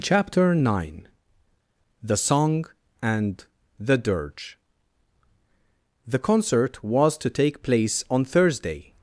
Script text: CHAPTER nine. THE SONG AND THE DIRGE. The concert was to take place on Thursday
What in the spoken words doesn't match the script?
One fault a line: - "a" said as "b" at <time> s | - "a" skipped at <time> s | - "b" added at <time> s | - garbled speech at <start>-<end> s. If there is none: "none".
none